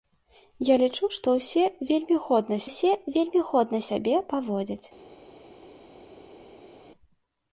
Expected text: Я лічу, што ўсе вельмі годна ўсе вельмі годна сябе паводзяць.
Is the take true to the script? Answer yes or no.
yes